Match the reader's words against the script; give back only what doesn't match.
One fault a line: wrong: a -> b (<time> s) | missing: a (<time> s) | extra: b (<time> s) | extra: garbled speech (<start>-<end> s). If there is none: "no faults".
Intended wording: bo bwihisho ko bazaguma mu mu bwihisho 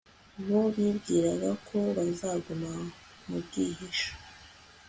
wrong: bwihisho -> bibwiraga (0.7 s)
missing: mu (3.4 s)